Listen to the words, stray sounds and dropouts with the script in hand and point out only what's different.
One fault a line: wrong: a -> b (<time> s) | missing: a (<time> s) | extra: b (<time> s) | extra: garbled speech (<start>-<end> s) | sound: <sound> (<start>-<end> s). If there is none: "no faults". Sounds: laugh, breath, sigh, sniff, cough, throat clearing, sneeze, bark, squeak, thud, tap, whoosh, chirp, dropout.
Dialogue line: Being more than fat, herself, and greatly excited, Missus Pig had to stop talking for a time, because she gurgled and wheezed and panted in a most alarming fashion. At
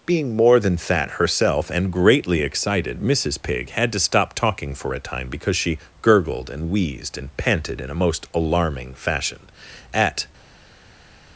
no faults